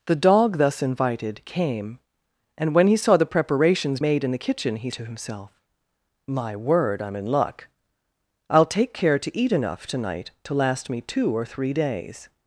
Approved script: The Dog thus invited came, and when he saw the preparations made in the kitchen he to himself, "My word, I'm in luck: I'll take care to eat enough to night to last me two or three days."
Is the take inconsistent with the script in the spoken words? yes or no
no